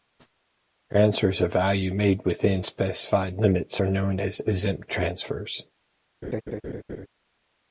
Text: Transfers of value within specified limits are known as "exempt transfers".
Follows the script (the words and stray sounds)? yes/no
no